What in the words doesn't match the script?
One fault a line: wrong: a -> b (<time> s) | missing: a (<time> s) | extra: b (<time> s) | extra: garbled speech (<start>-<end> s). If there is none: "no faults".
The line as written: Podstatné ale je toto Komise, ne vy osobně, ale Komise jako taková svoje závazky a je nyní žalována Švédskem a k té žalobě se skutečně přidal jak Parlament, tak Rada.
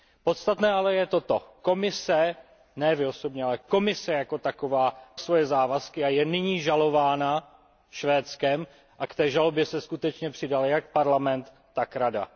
no faults